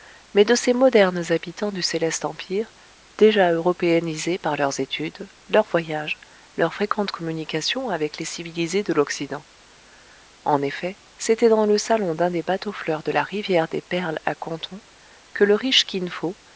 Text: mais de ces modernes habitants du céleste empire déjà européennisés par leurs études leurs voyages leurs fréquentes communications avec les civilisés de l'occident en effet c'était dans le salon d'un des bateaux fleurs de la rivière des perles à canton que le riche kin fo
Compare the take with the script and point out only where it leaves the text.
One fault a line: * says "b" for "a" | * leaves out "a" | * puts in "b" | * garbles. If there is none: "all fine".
all fine